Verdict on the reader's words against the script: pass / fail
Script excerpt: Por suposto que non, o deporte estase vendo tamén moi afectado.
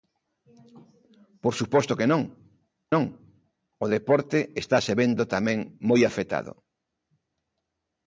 fail